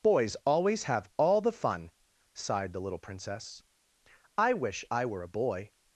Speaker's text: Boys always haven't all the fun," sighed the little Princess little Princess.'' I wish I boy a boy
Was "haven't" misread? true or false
true